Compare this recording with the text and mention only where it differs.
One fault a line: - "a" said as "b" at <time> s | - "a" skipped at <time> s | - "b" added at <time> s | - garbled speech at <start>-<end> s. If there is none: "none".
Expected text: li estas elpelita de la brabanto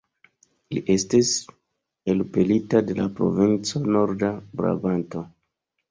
- "estas" said as "estis" at 0.9 s
- "provinco norda" added at 3.2 s